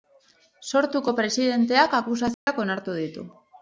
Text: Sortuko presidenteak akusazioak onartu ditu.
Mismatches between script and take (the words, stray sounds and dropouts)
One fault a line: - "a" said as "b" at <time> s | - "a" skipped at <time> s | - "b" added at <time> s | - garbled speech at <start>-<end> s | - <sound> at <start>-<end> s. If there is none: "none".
- dropout at 2.3-2.5 s